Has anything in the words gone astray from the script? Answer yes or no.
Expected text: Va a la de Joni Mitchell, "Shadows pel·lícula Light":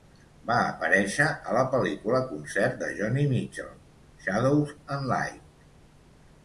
yes